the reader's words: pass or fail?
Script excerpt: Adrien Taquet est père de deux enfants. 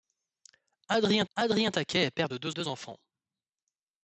fail